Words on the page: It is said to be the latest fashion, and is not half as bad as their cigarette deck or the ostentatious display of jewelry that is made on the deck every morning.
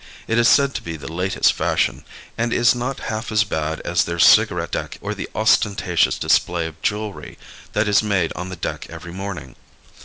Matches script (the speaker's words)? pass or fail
pass